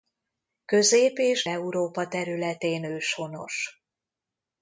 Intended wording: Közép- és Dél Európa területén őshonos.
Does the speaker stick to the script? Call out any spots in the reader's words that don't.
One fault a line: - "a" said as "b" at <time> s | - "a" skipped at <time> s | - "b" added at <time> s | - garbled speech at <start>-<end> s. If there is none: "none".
- "Dél" skipped at 1.5 s